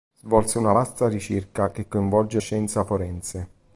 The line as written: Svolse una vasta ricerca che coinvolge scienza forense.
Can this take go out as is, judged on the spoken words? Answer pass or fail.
pass